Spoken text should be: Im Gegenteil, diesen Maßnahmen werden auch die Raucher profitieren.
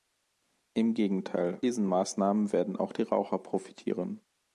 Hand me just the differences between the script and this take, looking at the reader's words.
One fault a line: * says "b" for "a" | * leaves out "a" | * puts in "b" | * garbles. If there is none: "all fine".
all fine